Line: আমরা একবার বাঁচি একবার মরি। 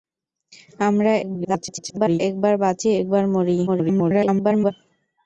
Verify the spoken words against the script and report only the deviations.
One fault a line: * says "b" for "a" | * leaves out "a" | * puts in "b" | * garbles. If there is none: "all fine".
* garbles
* garbles